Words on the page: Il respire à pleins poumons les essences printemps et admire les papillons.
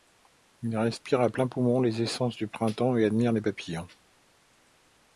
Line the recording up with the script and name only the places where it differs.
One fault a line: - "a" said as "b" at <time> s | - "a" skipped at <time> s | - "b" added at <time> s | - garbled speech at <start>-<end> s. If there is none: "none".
- "du" added at 2.4 s